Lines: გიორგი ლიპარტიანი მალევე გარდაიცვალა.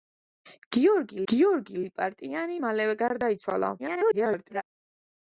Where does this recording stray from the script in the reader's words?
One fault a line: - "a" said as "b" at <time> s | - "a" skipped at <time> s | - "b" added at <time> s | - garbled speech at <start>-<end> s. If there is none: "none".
- "გიორგი" added at 1.3 s
- garbled speech at 3.8-4.6 s